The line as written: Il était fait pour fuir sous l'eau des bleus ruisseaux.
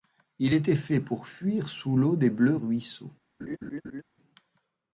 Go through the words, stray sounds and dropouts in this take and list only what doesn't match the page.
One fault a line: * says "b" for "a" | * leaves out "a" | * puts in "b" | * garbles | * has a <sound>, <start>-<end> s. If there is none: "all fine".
* has a laugh, 3.4-4.0 s